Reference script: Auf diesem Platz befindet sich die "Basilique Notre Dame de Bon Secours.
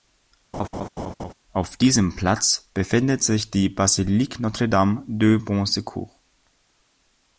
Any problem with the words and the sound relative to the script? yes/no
yes